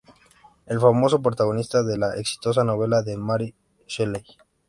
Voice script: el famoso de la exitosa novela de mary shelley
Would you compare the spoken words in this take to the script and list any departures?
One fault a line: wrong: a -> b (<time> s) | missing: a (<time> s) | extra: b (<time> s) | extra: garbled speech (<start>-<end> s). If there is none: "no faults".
extra: protagonista (1.2 s)